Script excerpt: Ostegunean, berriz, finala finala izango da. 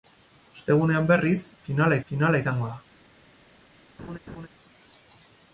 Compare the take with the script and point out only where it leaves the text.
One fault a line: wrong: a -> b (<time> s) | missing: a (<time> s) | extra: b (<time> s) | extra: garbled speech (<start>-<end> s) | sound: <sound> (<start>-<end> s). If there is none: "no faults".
sound: laugh (4.0-4.5 s)